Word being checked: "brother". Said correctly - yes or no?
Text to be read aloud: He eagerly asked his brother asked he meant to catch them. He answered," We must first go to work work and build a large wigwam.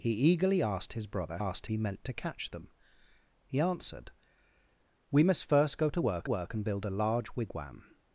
yes